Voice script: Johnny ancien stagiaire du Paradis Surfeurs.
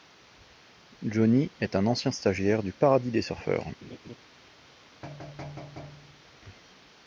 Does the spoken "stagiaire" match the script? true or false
true